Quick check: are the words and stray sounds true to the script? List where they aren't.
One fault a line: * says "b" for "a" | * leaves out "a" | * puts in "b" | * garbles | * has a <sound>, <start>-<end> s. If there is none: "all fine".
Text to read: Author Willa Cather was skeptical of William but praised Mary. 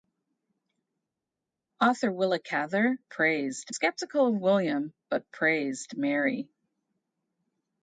* says "praised" for "was"